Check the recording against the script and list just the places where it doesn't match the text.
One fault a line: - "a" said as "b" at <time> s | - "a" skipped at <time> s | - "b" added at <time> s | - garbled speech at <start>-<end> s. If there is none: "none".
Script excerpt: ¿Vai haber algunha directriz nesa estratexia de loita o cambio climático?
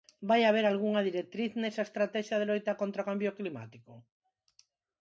- "contra" added at 2.8 s